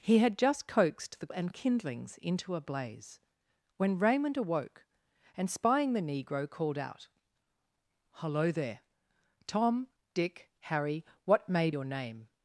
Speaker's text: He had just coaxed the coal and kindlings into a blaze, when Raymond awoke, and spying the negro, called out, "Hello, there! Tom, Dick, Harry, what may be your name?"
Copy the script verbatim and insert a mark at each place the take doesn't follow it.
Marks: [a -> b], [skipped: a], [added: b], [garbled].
He had just coaxed the [skipped: coal] and kindlings into a blaze, when Raymond awoke, and spying the negro, called out, "Hello, there! Tom, Dick, Harry, what may [skipped: be] your name?"